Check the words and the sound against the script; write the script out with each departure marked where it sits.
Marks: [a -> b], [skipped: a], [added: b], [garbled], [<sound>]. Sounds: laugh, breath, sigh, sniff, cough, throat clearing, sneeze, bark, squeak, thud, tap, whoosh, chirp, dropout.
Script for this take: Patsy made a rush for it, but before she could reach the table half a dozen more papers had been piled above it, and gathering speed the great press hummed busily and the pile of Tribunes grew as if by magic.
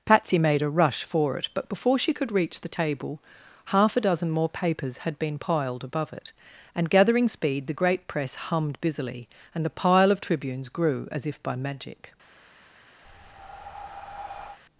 Patsy made a rush for it, but before she could reach the table half a dozen more papers had been piled above it, and gathering speed the great press hummed busily and the pile of Tribunes grew as if by magic. [breath]